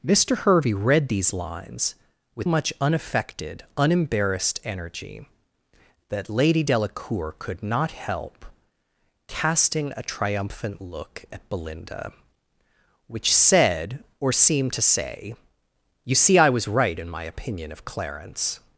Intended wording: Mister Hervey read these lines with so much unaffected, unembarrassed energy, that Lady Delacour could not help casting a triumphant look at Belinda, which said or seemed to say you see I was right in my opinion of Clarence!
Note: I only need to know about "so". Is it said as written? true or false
false